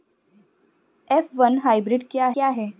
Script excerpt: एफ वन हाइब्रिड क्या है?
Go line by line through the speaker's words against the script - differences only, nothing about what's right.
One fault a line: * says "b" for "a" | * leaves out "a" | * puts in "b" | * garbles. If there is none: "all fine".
* puts in "क्या"